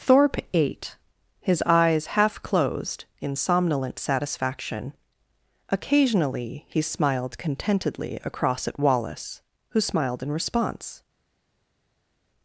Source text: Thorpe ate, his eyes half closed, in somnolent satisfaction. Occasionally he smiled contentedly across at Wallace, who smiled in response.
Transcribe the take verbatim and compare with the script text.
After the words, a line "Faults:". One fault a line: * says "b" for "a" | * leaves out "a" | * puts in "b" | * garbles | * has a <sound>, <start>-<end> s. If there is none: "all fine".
Thorpe ate, his eyes half closed, in somnolent satisfaction. Occasionally he smiled contentedly across at Wallace, who smiled in response.
Faults:
all fine